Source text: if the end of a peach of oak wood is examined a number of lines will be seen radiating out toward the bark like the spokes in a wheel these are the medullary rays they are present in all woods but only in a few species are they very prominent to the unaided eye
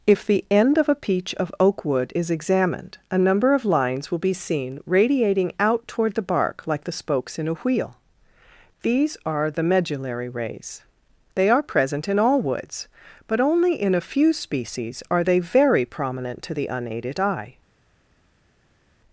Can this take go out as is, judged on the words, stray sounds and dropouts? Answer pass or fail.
pass